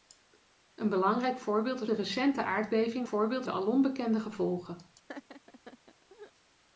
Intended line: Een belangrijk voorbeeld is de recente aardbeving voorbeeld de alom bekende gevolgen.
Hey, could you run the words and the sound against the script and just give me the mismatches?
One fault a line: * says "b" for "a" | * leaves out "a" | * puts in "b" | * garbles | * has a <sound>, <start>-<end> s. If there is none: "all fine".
* has a laugh, 5.1-6.3 s